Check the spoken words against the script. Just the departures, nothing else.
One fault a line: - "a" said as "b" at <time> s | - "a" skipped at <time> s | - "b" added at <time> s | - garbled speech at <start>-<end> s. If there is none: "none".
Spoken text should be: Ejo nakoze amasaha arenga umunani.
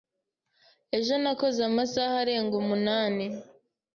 none